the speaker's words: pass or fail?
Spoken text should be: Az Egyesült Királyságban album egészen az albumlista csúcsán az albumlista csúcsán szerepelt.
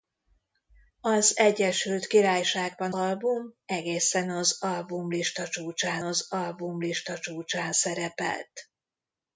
pass